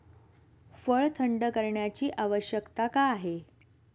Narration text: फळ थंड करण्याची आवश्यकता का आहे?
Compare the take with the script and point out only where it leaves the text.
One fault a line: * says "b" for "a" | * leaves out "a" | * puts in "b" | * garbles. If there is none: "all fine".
all fine